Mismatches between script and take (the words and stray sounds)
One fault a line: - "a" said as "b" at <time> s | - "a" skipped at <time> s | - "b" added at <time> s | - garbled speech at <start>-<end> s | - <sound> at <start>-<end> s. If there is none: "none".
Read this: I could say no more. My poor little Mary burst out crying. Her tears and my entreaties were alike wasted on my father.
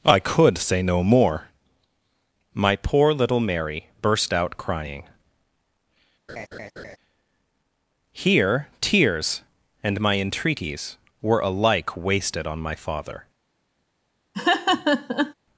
- laugh at 6.3-7.0 s
- "Her" said as "Here" at 8.1 s
- laugh at 14.3-15.3 s